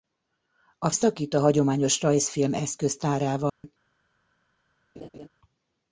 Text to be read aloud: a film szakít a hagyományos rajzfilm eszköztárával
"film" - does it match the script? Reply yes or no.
no